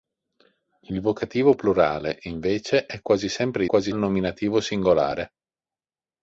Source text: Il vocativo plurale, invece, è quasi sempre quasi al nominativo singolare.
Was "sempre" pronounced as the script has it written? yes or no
yes